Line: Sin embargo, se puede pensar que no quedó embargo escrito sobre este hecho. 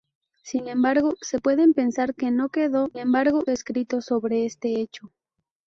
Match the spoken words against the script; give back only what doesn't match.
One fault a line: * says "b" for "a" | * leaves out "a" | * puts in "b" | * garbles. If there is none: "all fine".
all fine